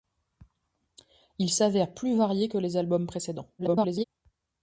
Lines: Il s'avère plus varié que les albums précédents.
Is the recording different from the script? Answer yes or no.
yes